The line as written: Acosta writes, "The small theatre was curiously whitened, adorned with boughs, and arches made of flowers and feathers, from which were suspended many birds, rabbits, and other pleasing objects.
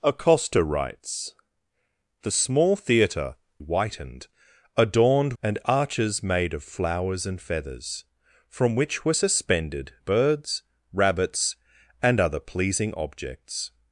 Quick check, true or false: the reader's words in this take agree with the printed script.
false